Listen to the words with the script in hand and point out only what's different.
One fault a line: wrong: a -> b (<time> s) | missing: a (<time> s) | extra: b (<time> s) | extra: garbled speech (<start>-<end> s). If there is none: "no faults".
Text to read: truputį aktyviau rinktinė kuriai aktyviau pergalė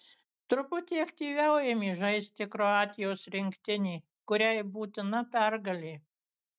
extra: ėmė žaisti kroatijos (1.7 s)
wrong: aktyviau -> būtina (4.8 s)